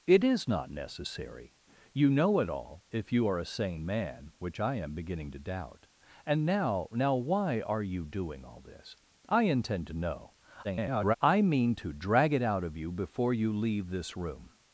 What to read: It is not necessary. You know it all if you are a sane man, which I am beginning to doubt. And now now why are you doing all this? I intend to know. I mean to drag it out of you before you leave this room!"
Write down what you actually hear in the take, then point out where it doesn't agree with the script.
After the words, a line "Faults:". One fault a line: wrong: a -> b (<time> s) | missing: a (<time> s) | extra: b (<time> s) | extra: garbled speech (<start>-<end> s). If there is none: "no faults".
It is not necessary. You know it all if you are a sane man, which I am beginning to doubt. And now now why are you doing all this? I intend to know. [garbled] I mean to drag it out of you before you leave this room!"
Faults:
extra: garbled speech (10.6-11.2 s)